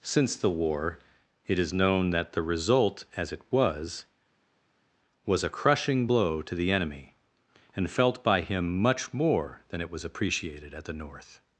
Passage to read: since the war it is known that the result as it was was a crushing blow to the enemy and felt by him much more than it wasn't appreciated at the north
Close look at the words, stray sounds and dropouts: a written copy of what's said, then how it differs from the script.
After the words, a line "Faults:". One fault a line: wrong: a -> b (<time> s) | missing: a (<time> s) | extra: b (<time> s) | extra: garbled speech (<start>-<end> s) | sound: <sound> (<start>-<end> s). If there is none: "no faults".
since the war it is known that the result as it was was a crushing blow to the enemy and felt by him much more than it was appreciated at the north
Faults:
wrong: wasn't -> was (9.9 s)